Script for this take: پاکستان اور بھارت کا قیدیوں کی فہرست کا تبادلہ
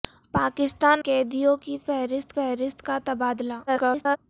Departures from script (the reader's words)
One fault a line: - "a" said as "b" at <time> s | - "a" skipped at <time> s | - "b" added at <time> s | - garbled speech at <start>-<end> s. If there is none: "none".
- "اور بھارت کا" skipped at 1.0 s
- "فہرست" added at 2.3 s
- garbled speech at 3.7-4.2 s